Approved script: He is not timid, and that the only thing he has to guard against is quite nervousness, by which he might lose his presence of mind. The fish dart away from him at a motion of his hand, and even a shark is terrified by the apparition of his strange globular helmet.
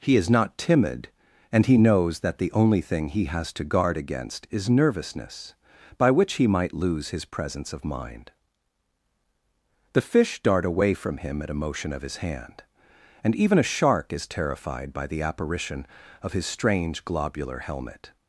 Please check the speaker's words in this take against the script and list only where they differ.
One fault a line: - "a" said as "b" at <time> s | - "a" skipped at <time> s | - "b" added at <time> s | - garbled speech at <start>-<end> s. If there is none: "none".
- "he knows" added at 1.7 s
- "quite" skipped at 4.7 s